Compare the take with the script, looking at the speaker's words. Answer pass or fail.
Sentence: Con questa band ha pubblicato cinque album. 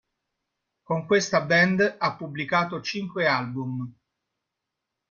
pass